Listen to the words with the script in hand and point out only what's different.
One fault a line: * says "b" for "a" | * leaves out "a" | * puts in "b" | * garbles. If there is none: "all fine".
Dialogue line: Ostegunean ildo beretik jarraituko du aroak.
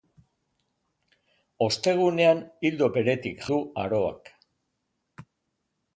* leaves out "jarraituko"